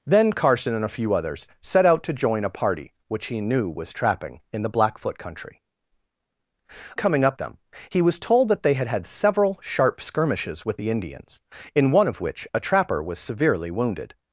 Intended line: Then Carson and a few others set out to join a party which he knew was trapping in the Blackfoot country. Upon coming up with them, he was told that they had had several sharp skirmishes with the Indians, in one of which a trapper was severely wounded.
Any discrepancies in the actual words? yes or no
yes